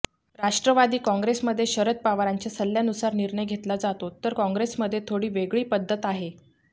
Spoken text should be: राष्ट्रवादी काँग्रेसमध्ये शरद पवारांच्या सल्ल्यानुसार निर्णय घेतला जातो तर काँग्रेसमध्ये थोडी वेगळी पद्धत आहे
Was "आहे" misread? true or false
false